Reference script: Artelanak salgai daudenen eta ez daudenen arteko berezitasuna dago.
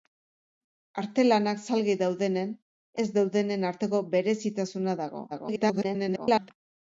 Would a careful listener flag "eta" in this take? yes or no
yes